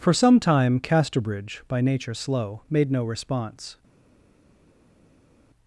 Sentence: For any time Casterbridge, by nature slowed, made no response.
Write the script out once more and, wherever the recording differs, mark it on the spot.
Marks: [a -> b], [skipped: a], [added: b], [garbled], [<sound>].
For [any -> some] time Casterbridge, by nature [slowed, -> slow] made no response.